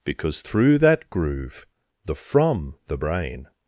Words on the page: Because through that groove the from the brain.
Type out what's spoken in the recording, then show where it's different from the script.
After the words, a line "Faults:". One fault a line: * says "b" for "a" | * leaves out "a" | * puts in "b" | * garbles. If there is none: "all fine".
Because through that groove the from the brain.
Faults:
all fine